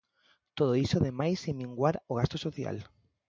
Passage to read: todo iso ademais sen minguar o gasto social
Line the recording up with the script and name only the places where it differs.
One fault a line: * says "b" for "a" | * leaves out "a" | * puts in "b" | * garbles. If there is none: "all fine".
all fine